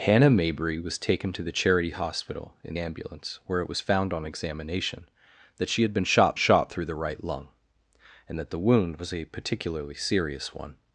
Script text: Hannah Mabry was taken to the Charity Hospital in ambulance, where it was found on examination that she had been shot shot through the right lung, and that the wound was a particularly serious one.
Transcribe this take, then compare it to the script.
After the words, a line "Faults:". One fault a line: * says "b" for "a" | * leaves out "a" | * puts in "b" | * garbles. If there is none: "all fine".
Hannah Mabry was taken to the Charity Hospital in ambulance, where it was found on examination that she had been shot shot through the right lung, and that the wound was a particularly serious one.
Faults:
all fine